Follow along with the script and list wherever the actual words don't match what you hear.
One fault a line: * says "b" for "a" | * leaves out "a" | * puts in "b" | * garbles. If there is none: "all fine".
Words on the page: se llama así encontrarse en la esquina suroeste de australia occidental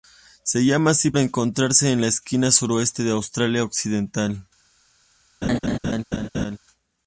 all fine